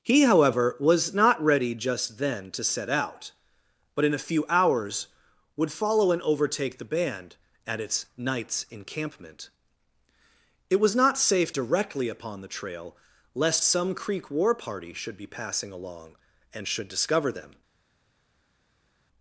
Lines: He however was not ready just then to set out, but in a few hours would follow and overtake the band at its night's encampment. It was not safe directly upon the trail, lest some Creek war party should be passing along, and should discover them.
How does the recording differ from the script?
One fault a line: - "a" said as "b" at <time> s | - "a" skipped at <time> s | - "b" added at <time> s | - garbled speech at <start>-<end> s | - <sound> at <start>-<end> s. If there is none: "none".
none